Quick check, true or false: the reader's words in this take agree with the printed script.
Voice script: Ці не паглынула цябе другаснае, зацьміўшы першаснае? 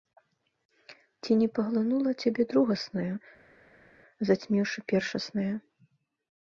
true